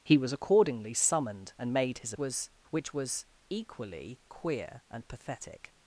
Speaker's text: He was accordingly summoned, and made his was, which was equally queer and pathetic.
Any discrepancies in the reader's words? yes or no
no